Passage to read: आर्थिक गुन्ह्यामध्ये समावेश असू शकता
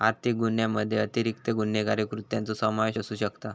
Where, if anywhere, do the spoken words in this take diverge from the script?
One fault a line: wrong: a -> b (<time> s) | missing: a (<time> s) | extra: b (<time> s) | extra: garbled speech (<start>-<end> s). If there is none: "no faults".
extra: अतिरिक्त गुन्हेगारी कृत्यांचो (1.0 s)